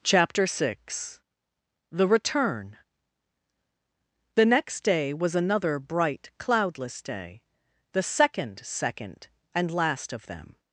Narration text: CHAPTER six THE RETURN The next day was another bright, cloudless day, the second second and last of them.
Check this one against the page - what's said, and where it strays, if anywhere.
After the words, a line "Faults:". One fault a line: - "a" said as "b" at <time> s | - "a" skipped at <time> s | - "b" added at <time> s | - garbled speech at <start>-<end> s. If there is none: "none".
CHAPTER six THE RETURN The next day was another bright, cloudless day, the second second and last of them.
Faults:
none